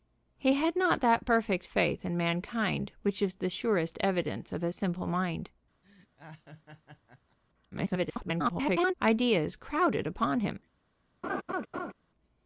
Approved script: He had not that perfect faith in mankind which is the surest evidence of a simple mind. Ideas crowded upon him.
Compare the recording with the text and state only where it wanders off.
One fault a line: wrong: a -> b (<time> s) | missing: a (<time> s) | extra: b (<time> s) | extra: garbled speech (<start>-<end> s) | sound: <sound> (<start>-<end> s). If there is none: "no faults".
sound: laugh (5.8-7.4 s)
extra: garbled speech (7.7-8.9 s)
sound: laugh (11.2-11.9 s)